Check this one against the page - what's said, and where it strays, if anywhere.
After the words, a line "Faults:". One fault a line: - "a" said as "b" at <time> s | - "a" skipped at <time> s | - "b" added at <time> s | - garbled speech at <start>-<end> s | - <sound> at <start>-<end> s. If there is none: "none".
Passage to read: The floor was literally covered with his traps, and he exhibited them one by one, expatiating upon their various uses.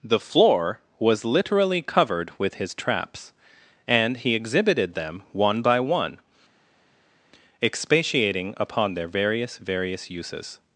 The floor was literally covered with his traps, and he exhibited them one by one, expatiating upon their various various uses.
Faults:
- "various" added at 9.6 s